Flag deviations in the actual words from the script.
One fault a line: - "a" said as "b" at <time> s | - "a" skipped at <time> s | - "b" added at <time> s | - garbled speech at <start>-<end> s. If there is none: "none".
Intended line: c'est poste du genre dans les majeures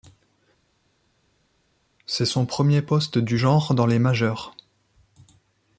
- "son premier" added at 2.2 s